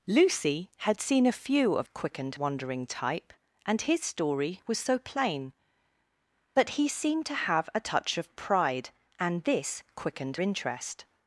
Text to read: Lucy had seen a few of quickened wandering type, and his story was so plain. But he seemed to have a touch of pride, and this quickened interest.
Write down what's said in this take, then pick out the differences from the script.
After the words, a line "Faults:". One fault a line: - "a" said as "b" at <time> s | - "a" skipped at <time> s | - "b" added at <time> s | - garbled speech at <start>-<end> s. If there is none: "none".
Lucy had seen a few of quickened wandering type, and his story was so plain. But he seemed to have a touch of pride, and this quickened interest.
Faults:
none